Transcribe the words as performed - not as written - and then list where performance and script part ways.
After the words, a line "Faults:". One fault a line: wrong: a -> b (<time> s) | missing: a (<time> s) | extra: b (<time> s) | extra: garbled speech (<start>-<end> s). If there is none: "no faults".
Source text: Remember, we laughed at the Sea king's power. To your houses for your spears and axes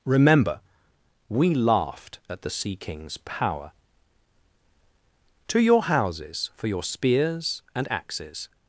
Remember, we laughed at the Sea king's power. To your houses for your spears and axes
Faults:
no faults